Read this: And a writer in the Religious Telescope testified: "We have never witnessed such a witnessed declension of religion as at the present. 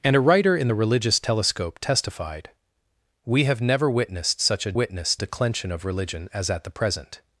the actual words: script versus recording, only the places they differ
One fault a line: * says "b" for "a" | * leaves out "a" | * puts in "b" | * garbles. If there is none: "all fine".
all fine